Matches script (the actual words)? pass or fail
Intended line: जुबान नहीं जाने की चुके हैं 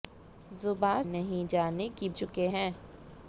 pass